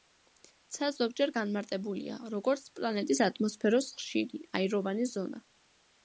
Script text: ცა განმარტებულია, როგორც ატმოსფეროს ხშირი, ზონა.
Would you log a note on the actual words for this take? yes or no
yes